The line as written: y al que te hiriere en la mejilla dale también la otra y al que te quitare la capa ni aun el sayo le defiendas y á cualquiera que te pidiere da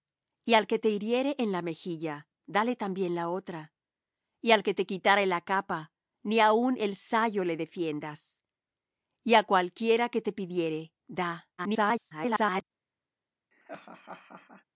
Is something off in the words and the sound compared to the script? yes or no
yes